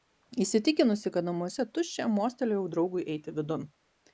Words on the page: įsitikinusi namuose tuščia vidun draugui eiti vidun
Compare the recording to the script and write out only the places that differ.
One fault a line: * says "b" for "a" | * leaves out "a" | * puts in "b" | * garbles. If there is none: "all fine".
* puts in "kad"
* says "mostelėjau" for "vidun"